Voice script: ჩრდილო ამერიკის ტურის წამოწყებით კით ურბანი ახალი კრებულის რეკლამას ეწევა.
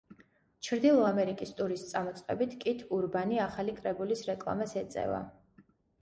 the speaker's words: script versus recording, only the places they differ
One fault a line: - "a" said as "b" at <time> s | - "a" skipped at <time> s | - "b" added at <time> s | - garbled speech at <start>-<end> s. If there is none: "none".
none